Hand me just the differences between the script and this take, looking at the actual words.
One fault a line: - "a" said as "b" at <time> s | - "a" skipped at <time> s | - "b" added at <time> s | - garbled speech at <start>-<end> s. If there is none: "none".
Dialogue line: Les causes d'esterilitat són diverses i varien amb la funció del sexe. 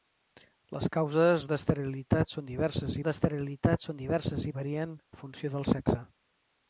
- "d'esterilitat són diverses" added at 3.0 s
- "amb" skipped at 5.0 s